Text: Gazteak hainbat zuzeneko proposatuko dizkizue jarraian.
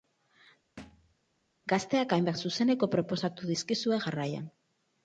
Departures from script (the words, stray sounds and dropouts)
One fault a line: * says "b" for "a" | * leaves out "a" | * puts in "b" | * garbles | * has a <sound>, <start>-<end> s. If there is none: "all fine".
* has a thud, 0.8-1.1 s